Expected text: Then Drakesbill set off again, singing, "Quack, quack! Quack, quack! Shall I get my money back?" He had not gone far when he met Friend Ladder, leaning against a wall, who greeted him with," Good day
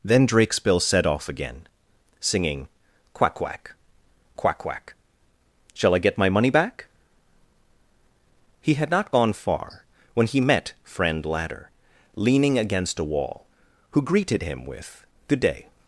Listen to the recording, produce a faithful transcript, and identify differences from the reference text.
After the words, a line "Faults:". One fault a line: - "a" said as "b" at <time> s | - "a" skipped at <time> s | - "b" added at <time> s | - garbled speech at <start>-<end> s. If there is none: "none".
Then Drakesbill set off again, singing, "Quack, quack! Quack, quack! Shall I get my money back?" He had not gone far when he met Friend Ladder, leaning against a wall, who greeted him with," Good day
Faults:
none